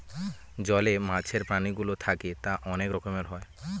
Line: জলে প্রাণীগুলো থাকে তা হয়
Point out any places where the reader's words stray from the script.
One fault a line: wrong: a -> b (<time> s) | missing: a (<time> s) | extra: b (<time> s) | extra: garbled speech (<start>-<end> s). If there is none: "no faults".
extra: মাছের (1.1 s)
extra: অনেক রকমের (2.6 s)